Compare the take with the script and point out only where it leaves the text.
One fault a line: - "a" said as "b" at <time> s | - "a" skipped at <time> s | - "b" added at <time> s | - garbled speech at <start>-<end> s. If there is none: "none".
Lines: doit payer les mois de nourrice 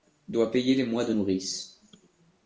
none